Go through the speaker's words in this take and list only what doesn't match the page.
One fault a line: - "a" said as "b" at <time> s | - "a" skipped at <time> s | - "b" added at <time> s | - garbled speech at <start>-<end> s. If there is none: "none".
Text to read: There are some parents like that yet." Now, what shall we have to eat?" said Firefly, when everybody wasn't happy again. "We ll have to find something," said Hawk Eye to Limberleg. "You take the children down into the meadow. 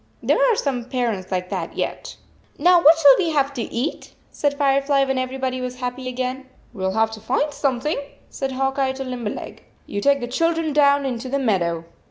- "wasn't" said as "was" at 5.6 s